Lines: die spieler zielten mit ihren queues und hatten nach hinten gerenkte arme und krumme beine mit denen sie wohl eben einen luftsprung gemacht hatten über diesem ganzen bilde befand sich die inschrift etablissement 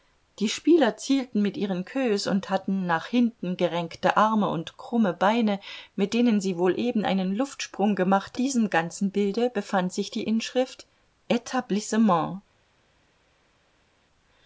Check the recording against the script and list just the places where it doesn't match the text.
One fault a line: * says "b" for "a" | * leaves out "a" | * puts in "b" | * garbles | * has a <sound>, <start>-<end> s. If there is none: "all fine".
* leaves out "hatten über"